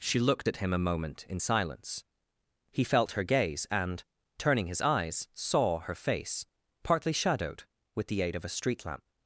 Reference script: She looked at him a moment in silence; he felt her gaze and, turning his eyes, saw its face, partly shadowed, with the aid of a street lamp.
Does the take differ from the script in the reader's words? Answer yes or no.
yes